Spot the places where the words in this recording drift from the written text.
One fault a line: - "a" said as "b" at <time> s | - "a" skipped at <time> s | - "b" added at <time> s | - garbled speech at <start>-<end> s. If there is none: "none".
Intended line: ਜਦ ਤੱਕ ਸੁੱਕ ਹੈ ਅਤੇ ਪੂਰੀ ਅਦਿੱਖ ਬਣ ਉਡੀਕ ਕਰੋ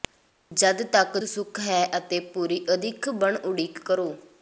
none